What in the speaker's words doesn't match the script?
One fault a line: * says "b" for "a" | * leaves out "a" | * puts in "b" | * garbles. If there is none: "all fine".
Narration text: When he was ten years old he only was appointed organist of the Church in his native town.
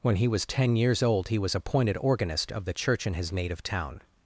* leaves out "only"